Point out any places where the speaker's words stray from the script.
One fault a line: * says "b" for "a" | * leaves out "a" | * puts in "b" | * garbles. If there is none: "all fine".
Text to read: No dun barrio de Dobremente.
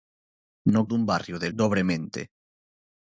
all fine